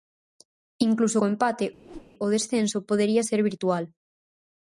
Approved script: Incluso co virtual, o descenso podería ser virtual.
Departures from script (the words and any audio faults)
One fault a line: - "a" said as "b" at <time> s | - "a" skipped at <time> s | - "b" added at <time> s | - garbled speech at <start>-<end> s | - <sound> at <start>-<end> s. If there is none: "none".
- "virtual" said as "empate" at 1.3 s
- whoosh at 1.8-2.1 s